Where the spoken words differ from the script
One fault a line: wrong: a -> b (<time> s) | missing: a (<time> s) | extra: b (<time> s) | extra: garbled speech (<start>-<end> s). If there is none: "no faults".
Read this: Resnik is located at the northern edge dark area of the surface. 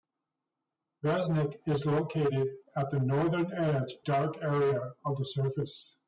no faults